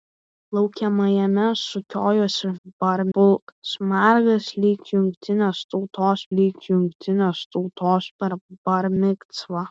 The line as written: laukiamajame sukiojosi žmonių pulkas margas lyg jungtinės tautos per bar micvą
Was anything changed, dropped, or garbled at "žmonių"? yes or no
yes